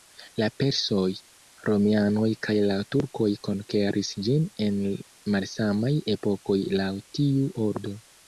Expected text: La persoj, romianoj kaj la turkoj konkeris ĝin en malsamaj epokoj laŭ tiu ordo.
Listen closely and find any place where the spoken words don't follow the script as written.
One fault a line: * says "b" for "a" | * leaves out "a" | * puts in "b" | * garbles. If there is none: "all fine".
all fine